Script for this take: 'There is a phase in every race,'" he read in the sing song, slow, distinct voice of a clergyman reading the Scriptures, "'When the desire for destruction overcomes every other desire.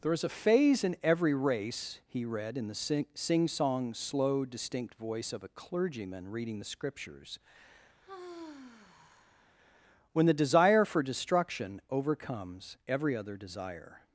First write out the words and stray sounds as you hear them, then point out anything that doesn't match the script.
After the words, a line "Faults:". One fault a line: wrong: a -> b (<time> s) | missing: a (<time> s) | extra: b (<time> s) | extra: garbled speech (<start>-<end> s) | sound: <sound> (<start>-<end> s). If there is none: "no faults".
'There is a phase in every race,'" he read in the sing song, slow, distinct voice of a clergyman reading the Scriptures, "'When the desire for destruction overcomes every other desire.
Faults:
sound: sigh (8.0-9.5 s)